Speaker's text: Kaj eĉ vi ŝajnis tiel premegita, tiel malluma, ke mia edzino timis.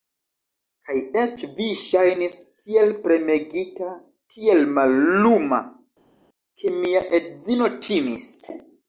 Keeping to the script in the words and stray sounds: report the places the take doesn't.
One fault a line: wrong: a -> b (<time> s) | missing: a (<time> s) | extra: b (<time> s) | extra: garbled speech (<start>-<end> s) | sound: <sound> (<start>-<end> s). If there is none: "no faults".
no faults